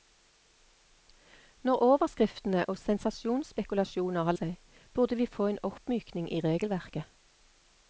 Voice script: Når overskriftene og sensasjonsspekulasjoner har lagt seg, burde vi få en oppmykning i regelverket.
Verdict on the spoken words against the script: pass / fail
fail